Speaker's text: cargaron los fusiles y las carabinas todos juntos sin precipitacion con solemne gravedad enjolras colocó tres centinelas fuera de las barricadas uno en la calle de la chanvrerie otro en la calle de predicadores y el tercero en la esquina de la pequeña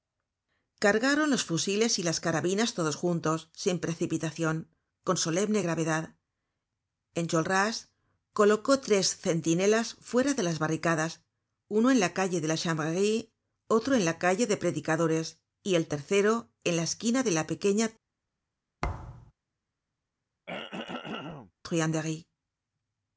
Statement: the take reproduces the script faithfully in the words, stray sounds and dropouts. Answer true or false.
false